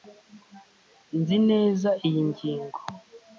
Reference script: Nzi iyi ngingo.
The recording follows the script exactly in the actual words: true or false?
false